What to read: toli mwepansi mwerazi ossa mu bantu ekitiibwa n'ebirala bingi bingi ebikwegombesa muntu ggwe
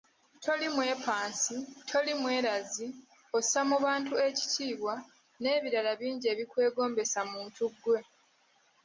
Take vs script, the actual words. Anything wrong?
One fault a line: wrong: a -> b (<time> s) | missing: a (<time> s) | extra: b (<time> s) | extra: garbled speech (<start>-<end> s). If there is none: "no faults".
extra: toli (1.9 s)
missing: bingi (6.2 s)